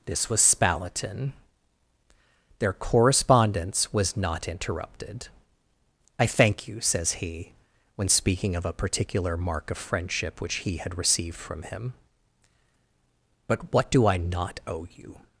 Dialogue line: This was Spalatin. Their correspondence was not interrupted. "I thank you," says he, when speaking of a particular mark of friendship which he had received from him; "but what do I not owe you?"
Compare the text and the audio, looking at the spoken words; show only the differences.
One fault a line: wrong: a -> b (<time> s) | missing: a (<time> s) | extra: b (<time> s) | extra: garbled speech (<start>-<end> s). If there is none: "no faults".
no faults